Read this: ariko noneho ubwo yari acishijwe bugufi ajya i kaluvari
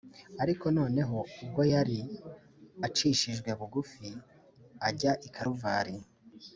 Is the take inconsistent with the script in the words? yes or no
no